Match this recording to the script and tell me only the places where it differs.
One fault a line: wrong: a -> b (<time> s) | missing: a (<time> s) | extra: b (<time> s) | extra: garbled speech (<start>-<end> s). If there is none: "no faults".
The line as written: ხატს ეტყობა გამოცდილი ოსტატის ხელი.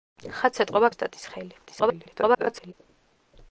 missing: გამოცდილი (0.9 s)
extra: garbled speech (1.6-2.7 s)